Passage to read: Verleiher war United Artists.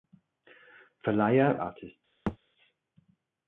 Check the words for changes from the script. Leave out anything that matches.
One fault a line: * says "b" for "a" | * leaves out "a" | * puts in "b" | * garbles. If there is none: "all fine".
* leaves out "war United"